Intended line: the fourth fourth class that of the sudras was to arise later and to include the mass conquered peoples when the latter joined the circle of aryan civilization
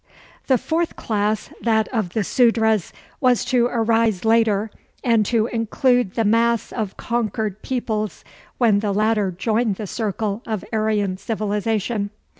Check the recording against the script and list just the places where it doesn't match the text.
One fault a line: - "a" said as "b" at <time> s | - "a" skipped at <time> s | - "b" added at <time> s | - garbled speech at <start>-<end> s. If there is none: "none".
- "fourth" skipped at 0.9 s
- "of" added at 6.7 s